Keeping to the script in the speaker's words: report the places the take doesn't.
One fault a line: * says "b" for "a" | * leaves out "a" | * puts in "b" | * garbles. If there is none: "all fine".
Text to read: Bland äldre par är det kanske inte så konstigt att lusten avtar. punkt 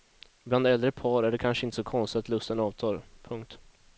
all fine